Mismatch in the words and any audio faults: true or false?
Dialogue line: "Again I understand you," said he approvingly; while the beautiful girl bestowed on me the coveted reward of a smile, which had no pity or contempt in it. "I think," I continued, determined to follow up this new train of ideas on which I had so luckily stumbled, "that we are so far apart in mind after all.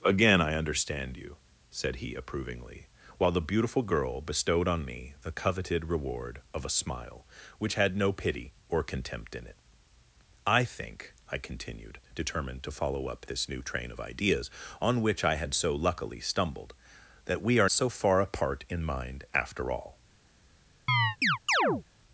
true